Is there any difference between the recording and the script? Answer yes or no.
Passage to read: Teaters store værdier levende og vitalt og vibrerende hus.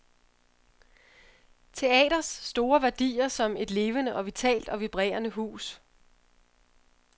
yes